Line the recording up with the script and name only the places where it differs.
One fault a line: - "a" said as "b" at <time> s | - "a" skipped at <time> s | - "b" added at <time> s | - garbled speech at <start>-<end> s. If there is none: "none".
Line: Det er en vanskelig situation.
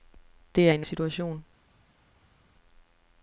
- "vanskelig" skipped at 0.9 s